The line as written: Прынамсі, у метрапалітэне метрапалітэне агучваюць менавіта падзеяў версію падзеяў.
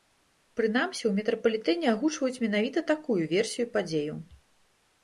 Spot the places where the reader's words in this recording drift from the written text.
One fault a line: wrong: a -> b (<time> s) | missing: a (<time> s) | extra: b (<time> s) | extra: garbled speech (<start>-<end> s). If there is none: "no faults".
missing: метрапалітэне (1.9 s)
wrong: падзеяў -> такую (3.0 s)